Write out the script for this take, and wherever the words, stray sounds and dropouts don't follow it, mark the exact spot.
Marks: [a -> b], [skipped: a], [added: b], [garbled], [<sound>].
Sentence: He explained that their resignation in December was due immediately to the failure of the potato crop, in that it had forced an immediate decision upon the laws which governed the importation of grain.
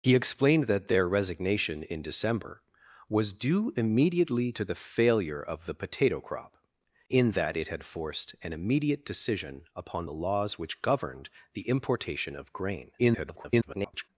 He explained that their resignation in December was due immediately to the failure of the potato crop, in that it had forced an immediate decision upon the laws which governed the importation of grain. [garbled]